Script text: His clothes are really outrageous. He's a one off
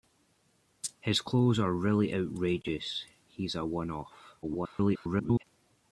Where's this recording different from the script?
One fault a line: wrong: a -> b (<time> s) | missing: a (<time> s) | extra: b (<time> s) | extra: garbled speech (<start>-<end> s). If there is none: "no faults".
extra: garbled speech (4.4-5.4 s)